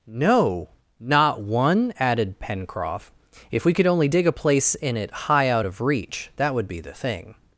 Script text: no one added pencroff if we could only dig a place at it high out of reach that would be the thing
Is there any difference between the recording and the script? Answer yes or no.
yes